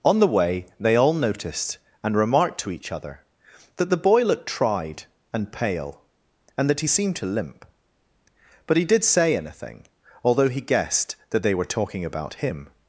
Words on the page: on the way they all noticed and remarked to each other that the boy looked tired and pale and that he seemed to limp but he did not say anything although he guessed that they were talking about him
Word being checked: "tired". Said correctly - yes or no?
no